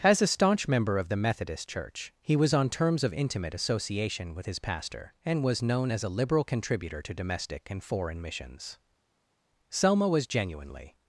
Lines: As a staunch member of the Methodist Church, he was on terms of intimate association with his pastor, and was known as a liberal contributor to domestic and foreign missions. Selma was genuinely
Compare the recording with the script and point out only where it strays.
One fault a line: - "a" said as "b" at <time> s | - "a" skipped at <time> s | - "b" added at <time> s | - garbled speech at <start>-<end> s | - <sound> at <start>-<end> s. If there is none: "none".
none